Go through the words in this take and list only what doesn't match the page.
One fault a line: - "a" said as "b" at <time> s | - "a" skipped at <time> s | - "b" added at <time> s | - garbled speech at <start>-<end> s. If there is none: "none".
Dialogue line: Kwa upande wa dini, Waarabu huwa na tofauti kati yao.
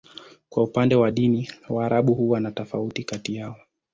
none